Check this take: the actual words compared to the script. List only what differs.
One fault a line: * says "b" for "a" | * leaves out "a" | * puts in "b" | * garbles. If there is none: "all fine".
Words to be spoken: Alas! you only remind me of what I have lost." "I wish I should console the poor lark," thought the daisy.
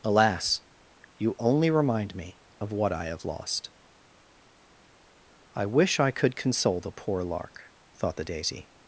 * says "could" for "should"